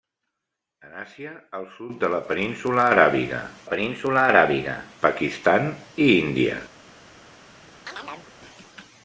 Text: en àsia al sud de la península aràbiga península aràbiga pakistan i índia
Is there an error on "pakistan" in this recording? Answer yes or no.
no